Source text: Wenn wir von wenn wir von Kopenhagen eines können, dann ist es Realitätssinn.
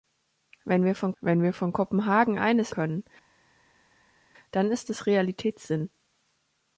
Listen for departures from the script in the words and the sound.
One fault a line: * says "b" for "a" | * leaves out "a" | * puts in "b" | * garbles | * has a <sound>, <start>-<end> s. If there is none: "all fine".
all fine